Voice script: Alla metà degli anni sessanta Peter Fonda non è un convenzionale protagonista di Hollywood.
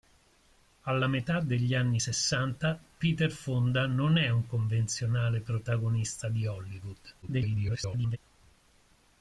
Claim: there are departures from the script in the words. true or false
true